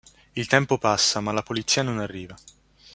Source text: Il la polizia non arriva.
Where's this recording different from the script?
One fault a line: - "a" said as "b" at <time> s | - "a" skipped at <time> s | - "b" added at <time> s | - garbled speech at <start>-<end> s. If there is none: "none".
- "tempo passa ma" added at 0.4 s